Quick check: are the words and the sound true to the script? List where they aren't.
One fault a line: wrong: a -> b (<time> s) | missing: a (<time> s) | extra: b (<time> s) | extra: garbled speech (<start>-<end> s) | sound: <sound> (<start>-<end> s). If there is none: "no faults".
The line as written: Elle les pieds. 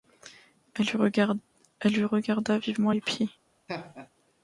extra: lui regarda vivement (1.9 s)
sound: laugh (3.7-4.1 s)